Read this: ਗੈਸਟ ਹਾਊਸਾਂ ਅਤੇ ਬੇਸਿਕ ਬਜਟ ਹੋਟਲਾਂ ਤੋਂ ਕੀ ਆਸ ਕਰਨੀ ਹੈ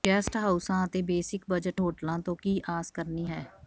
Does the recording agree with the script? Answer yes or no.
yes